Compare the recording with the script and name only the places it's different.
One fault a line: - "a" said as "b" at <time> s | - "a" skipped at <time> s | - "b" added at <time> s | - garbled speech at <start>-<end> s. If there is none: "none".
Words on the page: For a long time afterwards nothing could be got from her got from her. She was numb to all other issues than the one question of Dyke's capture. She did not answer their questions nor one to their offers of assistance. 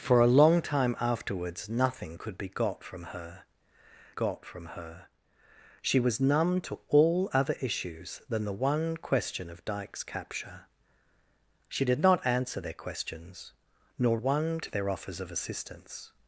none